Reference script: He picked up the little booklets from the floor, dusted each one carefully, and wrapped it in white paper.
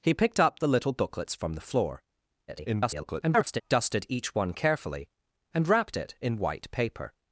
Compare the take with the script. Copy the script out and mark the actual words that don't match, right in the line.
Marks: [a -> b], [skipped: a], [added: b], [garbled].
He picked up the little booklets from the floor, [garbled] dusted each one carefully, and wrapped it in white paper.